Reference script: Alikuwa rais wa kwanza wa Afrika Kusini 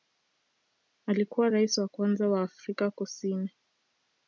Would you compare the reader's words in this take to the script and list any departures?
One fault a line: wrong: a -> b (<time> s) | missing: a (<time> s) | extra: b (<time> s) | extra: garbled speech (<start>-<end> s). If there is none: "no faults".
no faults